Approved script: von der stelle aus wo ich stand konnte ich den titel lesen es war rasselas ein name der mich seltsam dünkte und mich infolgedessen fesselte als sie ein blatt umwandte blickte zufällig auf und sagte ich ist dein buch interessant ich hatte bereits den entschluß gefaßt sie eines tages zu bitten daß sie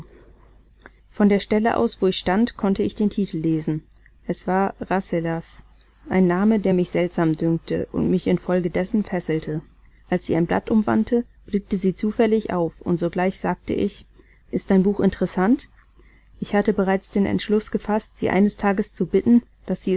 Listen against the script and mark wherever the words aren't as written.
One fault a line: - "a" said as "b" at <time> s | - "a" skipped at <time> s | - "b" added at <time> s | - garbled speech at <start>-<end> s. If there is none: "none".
- "sie" added at 11.8 s
- "sogleich" added at 13.0 s